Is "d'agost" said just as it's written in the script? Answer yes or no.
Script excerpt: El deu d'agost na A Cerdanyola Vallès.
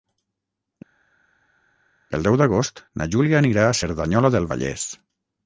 yes